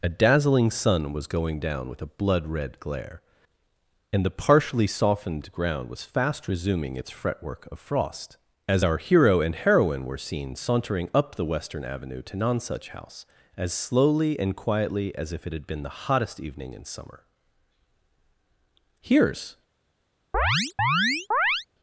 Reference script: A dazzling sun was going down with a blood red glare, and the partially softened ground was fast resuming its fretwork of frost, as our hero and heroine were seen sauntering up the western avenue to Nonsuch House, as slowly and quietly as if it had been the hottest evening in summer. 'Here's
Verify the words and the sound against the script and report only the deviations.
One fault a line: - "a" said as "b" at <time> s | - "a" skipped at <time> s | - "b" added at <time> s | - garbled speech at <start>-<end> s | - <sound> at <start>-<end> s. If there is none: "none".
- chirp at 20.3-21.7 s